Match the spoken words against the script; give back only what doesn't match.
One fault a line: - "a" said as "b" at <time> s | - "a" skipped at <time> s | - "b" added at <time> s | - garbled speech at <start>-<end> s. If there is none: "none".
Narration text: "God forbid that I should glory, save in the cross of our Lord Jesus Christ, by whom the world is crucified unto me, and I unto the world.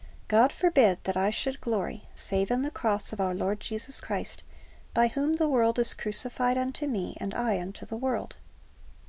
none